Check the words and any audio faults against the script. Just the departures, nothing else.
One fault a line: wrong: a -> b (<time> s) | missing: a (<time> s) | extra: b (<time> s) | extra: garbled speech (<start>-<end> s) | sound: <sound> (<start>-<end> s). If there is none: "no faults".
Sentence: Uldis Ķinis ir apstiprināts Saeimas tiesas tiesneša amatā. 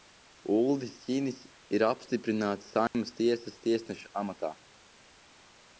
sound: dropout (2.9-2.9 s)